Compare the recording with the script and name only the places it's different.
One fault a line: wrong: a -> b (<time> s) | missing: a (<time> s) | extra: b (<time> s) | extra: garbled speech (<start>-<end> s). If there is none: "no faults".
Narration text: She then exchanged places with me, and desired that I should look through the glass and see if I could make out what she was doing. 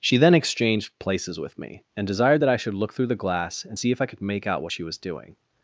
no faults